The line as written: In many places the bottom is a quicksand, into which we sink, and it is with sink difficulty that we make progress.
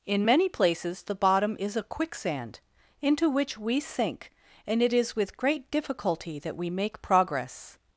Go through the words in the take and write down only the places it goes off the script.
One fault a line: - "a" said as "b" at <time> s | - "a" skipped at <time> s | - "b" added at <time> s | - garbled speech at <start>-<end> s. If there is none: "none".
- "sink" said as "great" at 5.4 s